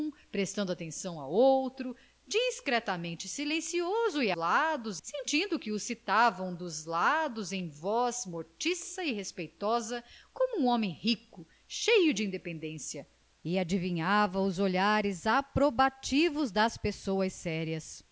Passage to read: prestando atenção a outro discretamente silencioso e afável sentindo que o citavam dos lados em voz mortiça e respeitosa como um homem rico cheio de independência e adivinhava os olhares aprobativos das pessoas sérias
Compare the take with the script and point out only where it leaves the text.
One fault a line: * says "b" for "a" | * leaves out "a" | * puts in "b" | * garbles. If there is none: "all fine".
* says "lados" for "afável"